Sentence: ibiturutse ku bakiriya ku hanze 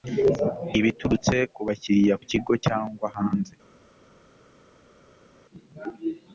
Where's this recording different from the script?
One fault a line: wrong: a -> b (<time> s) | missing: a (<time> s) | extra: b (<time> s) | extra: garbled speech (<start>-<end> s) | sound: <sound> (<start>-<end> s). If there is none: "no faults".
extra: kigo cyangwa (2.3 s)